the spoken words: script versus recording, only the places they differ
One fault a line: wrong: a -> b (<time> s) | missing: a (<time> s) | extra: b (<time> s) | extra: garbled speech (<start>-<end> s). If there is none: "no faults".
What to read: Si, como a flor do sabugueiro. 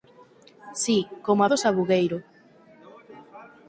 missing: flor (1.5 s)